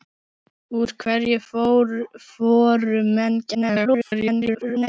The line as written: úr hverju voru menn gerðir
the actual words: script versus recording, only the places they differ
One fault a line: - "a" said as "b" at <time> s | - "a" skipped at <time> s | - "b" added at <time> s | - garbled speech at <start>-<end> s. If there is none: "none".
- garbled speech at 3.5-4.9 s